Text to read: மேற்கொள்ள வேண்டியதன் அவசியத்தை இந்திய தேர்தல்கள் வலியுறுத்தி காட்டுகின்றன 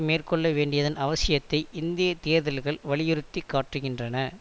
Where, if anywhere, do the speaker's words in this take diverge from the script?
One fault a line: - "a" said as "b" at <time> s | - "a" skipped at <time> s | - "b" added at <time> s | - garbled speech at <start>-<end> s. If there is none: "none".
none